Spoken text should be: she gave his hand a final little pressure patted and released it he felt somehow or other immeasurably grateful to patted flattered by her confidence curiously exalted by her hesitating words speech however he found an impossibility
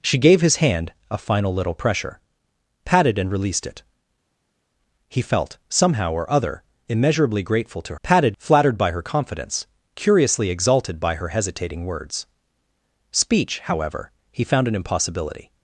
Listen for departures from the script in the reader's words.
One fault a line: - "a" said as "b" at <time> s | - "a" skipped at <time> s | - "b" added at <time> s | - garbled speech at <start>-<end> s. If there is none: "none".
none